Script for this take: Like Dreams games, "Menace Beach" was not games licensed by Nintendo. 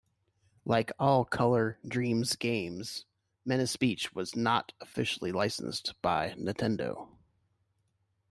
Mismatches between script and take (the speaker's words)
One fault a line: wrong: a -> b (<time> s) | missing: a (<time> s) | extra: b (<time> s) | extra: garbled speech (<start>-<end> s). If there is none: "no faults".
extra: all Color (1.0 s)
wrong: games -> officially (4.8 s)